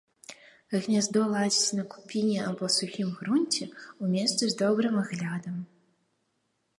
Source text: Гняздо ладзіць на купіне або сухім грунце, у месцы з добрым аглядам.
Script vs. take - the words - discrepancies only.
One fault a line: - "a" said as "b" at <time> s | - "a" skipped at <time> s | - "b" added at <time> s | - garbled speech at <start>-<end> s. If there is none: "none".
none